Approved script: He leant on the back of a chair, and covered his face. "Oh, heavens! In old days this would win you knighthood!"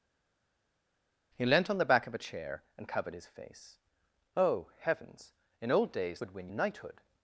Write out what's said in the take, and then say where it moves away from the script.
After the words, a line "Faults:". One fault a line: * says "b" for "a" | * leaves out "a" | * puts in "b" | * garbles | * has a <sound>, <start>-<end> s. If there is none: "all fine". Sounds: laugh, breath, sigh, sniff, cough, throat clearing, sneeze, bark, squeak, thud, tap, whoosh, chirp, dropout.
He leant on the back of a chair, and covered his face. "Oh, heavens! In old days would win knighthood!"
Faults:
* leaves out "this"
* leaves out "you"